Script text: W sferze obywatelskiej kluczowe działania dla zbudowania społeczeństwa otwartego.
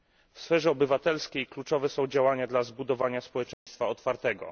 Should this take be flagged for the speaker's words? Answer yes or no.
yes